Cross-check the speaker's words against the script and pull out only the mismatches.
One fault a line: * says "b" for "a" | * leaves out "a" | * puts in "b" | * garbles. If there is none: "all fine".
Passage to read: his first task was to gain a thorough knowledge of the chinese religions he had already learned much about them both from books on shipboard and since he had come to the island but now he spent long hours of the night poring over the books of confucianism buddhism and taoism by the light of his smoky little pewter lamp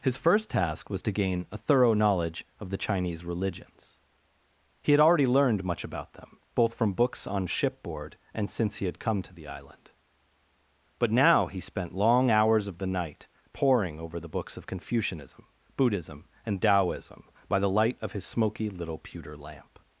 all fine